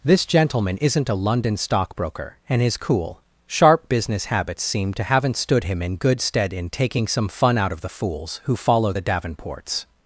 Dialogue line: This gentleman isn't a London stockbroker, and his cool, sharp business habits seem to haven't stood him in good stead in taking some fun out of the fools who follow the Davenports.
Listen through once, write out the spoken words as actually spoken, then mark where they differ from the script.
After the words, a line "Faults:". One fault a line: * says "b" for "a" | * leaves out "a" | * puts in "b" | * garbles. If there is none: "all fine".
This gentleman isn't a London stockbroker, and his cool, sharp business habits seem to haven't stood him in good stead in taking some fun out of the fools who follow the Davenports.
Faults:
all fine